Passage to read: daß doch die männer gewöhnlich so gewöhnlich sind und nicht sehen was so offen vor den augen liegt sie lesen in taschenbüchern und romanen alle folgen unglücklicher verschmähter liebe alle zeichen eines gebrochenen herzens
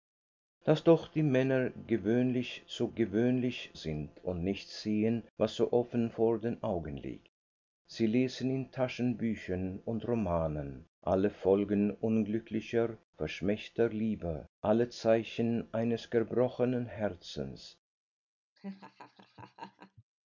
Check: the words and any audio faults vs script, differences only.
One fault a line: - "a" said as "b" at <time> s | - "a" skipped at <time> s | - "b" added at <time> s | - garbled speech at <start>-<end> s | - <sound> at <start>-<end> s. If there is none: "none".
- laugh at 18.6-20.0 s